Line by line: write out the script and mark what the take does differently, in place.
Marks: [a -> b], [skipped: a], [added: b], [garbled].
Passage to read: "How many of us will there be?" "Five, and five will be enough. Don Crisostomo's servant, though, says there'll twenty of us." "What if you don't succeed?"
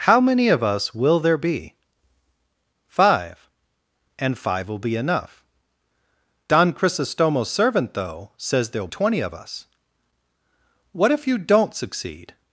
"How many of us will there be?" "Five, and five will be enough. Don Crisostomo's servant, though, says there'll twenty of us." "What if you don't succeed?"